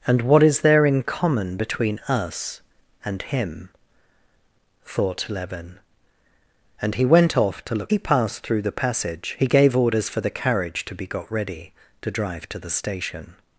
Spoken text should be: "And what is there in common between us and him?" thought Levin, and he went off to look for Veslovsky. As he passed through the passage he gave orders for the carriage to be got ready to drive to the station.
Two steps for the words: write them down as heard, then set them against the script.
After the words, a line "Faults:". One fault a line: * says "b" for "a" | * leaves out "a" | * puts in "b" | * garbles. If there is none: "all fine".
"And what is there in common between us and him?" thought Levin, and he went off to look he passed through the passage he gave orders for the carriage to be got ready to drive to the station.
Faults:
* leaves out "for Veslovsky As"